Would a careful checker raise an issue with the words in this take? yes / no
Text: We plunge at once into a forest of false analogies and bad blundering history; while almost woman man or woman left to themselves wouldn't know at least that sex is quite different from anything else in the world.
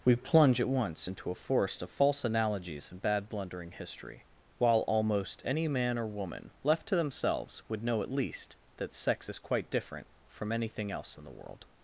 yes